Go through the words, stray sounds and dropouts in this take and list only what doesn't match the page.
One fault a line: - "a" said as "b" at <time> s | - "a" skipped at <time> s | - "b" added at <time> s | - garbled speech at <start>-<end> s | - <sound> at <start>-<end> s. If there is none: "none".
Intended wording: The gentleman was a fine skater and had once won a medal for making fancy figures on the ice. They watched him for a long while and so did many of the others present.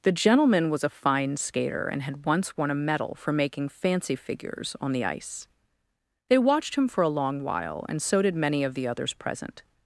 none